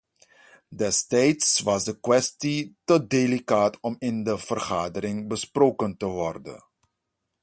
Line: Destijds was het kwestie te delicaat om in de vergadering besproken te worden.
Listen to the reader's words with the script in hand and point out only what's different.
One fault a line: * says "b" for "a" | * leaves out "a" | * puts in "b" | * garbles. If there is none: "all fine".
* says "de" for "het"